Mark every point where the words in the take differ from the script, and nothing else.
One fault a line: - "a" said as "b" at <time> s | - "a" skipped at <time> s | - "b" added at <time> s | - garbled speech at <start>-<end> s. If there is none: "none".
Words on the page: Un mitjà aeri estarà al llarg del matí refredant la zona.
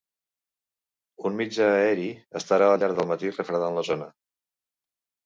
none